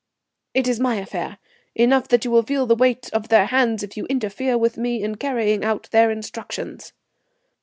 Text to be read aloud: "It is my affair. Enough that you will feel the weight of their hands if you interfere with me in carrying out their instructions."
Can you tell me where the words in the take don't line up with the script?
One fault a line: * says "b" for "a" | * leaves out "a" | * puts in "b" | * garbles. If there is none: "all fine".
all fine